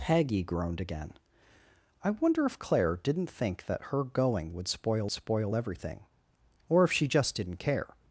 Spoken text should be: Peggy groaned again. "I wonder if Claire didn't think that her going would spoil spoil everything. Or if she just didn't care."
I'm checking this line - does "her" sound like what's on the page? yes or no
yes